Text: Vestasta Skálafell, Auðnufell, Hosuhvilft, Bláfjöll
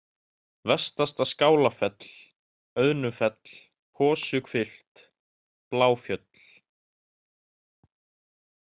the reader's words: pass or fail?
pass